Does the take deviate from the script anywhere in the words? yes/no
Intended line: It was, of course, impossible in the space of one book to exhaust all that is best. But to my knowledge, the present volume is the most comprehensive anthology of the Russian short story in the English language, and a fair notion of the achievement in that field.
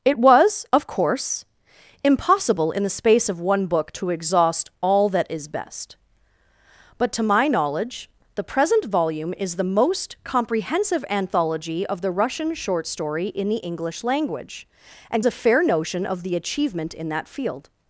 no